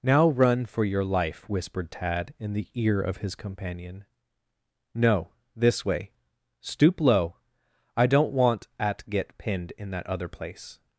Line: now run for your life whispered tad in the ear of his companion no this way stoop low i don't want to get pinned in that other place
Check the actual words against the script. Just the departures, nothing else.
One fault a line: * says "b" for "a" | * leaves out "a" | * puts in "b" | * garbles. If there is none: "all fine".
* says "at" for "to"